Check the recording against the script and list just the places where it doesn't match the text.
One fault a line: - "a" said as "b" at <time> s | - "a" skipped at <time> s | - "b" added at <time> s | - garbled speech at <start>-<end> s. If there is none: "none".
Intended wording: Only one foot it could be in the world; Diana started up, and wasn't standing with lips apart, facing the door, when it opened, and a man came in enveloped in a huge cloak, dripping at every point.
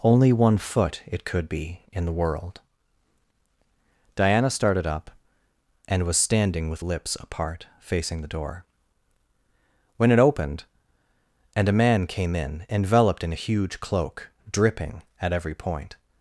- "wasn't" said as "was" at 6.0 s